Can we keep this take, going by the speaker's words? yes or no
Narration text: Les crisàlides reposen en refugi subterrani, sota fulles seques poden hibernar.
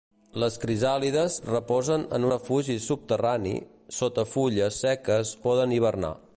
yes